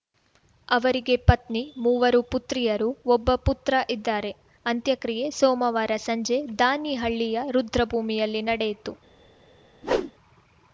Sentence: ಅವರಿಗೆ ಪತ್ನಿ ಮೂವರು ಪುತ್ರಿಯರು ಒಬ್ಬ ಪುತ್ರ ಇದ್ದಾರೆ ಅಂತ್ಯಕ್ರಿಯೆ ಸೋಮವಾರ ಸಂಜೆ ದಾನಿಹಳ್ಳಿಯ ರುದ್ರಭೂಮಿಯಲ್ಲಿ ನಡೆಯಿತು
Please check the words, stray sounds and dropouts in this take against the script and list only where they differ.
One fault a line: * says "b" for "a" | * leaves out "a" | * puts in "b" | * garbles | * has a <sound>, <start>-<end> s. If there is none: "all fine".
* has a whoosh, 9.8-10.1 s